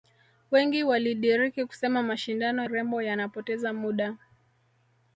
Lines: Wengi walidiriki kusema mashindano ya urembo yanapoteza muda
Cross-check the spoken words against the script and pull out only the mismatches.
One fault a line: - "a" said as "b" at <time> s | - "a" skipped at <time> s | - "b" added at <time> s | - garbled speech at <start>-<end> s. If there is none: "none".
- "ya" skipped at 2.6 s